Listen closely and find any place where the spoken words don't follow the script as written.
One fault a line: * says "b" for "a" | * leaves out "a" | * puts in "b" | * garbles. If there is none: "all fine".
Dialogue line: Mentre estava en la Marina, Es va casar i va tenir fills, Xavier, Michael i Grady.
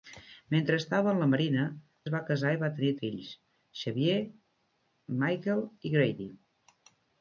all fine